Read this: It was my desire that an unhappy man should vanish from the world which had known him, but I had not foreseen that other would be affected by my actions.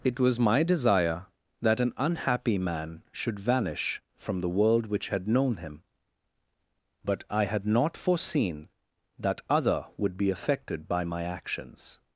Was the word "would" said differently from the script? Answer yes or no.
no